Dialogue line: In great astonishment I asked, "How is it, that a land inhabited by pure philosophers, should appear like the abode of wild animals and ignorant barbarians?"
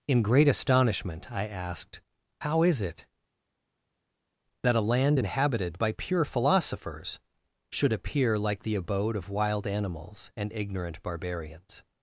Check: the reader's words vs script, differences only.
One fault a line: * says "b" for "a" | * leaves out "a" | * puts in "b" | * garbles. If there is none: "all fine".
all fine